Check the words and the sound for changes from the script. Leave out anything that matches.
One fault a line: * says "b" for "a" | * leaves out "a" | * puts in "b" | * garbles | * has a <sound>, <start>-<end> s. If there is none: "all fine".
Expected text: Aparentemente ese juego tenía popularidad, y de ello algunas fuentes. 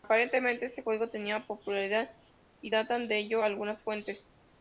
* says "este" for "ese"
* puts in "datan"